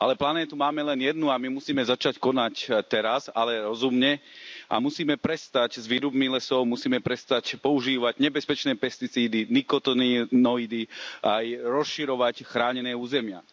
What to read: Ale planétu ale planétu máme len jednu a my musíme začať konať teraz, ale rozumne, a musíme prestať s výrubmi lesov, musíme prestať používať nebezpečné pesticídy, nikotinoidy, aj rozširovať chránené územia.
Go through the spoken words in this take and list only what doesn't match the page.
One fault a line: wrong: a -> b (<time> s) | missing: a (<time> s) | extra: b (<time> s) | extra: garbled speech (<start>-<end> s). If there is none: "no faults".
missing: ale planétu (0.6 s)